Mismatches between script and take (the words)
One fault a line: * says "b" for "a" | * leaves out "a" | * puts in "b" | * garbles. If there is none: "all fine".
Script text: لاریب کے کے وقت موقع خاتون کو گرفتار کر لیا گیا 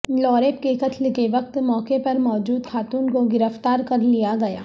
* puts in "قتل"
* puts in "پر موجود"